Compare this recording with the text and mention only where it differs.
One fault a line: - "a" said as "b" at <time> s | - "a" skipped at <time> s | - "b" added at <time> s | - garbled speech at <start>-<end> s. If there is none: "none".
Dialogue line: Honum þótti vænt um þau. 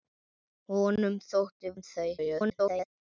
- "vænt" skipped at 1.8 s
- garbled speech at 2.2-2.9 s